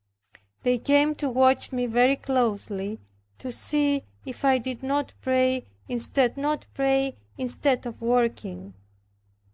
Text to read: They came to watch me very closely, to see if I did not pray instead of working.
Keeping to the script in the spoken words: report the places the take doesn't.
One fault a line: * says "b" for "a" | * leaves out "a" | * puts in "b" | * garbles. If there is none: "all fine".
* puts in "not pray instead"